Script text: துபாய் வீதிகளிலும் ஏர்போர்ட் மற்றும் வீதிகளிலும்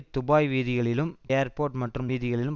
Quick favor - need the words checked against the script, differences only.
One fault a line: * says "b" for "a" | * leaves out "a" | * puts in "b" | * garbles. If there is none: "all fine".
all fine